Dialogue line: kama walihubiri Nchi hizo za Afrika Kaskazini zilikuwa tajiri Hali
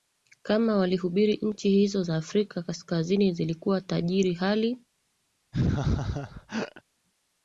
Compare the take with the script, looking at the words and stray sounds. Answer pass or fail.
fail